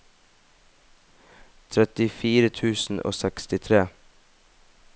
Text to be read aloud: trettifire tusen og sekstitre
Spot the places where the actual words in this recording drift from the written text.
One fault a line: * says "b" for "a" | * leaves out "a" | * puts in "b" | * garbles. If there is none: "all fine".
all fine